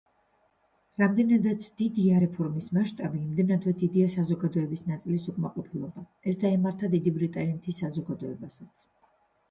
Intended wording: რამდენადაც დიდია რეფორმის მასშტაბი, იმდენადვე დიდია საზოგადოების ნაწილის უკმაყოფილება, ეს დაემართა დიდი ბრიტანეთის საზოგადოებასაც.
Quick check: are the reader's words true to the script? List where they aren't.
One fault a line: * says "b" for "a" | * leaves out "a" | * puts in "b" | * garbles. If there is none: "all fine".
all fine